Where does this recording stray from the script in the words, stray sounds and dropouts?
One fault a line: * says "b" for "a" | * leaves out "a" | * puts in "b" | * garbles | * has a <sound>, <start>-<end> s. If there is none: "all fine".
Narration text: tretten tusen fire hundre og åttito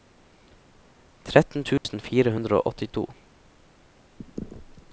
* has a dropout, 1.8-1.8 s